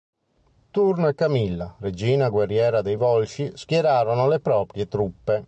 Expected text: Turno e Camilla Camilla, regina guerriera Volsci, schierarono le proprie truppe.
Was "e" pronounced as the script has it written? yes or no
yes